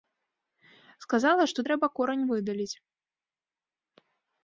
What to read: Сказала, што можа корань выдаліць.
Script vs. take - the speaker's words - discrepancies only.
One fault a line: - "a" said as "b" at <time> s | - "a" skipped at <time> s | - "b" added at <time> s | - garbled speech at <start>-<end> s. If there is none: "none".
- "можа" said as "трэба" at 1.7 s